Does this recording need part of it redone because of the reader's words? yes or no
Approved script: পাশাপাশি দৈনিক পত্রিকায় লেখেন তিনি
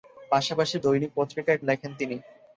no